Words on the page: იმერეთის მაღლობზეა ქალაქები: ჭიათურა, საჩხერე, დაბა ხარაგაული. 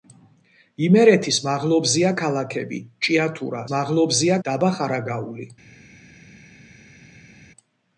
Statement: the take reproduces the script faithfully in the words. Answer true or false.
false